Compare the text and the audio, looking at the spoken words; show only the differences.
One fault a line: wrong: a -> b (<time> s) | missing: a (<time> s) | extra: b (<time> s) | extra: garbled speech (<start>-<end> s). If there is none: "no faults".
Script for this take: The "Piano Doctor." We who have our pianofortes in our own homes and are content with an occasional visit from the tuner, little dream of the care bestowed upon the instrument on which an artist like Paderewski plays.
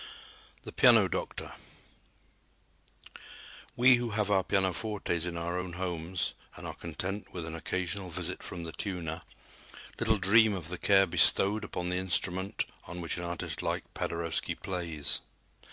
no faults